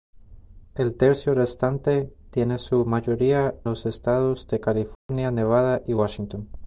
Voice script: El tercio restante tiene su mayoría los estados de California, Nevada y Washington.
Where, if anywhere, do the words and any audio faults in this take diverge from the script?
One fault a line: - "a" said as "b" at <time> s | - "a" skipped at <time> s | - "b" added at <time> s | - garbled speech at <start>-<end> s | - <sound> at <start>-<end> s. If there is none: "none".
- dropout at 5.0-5.1 s